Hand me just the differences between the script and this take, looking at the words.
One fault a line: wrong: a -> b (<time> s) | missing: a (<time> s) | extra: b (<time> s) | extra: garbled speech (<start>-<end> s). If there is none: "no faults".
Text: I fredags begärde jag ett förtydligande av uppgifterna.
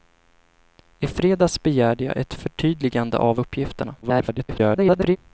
extra: garbled speech (4.0-5.2 s)